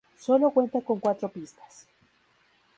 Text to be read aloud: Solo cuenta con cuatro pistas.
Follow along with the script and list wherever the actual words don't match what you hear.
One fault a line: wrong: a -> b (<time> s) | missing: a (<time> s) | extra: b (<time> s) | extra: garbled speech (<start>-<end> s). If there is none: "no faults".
no faults